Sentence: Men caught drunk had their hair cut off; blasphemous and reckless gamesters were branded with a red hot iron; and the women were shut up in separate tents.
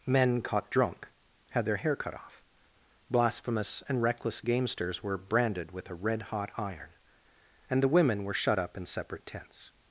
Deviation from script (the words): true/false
false